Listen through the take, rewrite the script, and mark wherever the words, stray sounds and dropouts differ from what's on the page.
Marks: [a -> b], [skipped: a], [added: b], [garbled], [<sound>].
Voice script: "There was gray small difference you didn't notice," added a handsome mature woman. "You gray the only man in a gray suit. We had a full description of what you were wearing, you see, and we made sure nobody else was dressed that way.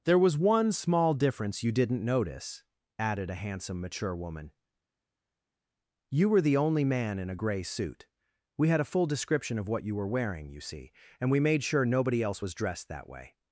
"There was [gray -> one] small difference you didn't notice," added a handsome mature woman. "You [gray -> were] the only man in a gray suit. We had a full description of what you were wearing, you see, and we made sure nobody else was dressed that way.